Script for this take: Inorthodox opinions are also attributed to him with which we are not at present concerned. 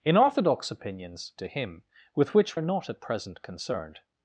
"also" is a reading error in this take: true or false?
true